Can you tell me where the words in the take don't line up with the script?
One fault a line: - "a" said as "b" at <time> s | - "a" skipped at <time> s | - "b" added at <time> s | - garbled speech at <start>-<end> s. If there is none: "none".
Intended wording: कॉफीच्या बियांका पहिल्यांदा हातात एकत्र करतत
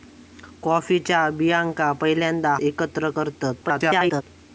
- "हातात" skipped at 2.5 s
- garbled speech at 3.6-4.2 s